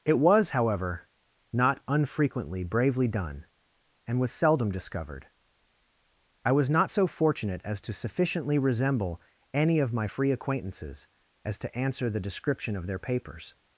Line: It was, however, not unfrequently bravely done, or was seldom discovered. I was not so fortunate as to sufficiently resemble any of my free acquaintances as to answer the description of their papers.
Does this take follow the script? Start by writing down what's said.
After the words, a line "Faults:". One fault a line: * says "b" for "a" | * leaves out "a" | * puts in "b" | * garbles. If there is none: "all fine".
It was, however, not unfrequently bravely done, and was seldom discovered. I was not so fortunate as to sufficiently resemble any of my free acquaintances as to answer the description of their papers.
Faults:
* says "and" for "or"